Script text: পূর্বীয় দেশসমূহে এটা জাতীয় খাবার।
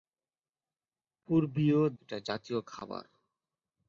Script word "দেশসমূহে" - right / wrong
wrong